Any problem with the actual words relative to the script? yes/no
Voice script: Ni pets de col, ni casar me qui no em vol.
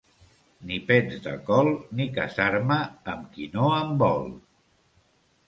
yes